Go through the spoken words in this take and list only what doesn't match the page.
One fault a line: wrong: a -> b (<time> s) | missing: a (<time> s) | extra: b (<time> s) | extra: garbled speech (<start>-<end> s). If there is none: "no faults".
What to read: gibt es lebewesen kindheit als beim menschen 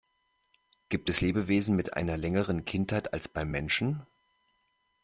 extra: mit einer längeren (1.7 s)